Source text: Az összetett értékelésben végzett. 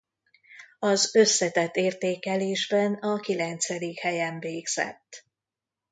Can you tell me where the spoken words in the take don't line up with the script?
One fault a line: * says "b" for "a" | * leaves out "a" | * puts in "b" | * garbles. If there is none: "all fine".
* puts in "a kilencedik helyen"